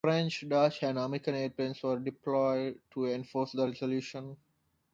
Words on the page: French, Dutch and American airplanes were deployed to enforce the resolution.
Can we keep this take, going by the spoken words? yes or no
yes